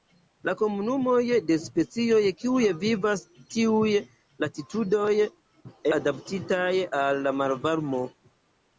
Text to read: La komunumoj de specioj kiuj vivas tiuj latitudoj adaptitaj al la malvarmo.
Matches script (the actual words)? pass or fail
pass